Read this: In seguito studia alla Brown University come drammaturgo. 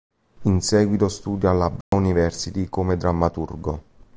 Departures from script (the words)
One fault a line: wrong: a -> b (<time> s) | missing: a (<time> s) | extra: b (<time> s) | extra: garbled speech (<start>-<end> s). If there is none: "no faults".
no faults